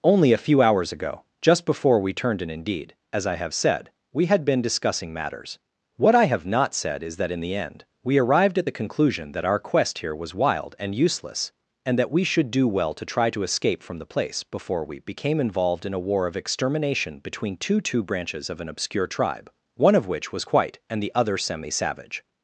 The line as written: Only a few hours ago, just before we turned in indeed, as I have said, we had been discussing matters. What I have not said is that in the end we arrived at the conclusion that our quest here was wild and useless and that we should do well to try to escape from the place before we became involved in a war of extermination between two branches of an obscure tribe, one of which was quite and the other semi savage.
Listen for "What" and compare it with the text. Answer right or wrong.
right